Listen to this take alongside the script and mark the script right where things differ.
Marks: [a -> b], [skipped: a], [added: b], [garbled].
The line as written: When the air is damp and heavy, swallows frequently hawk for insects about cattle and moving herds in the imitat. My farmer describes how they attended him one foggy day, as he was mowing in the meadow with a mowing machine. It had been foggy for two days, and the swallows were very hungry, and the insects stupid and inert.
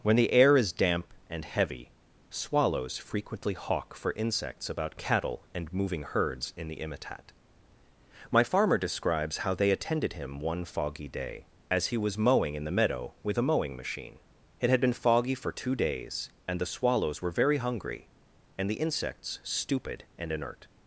When the air is damp and heavy, swallows frequently hawk for insects about cattle and moving herds in the imitat. My farmer describes how they attended him one foggy day, as he was mowing in the meadow with a mowing machine. It had been foggy for two days, and the swallows were very hungry, and the insects stupid and inert.